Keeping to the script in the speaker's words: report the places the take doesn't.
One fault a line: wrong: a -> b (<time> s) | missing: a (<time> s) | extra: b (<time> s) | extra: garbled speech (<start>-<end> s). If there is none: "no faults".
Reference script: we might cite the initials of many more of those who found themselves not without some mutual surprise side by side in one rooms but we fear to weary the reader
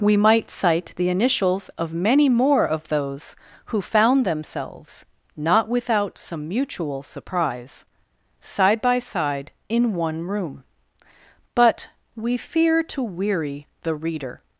wrong: rooms -> room (10.2 s)